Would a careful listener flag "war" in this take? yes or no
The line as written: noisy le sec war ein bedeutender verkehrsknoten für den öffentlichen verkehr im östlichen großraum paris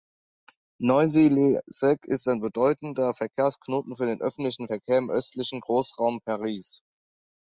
yes